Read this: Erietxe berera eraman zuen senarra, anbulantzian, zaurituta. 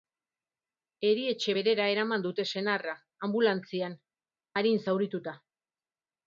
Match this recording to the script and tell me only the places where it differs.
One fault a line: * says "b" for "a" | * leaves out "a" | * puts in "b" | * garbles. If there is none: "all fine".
* says "dute" for "zuen"
* puts in "arin"